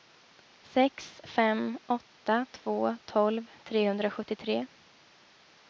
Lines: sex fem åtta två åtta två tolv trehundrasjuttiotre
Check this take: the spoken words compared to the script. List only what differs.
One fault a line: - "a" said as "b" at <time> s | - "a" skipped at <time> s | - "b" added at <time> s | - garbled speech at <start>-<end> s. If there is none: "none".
- "åtta två" skipped at 3.0 s